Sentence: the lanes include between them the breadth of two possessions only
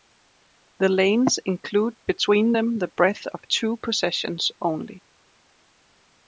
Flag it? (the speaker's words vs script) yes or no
no